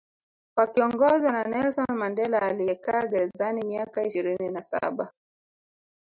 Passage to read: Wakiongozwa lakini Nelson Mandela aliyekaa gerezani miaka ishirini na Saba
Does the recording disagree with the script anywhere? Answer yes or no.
yes